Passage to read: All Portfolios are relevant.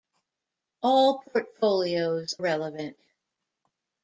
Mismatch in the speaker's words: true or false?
true